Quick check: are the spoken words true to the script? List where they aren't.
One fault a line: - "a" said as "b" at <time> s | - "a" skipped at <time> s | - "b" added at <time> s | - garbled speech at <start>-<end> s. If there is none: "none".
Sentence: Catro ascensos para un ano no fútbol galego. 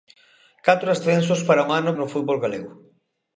none